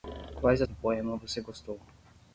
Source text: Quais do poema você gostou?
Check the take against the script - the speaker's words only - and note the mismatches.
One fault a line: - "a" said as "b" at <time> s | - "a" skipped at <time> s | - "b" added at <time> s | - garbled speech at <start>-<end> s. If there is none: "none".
none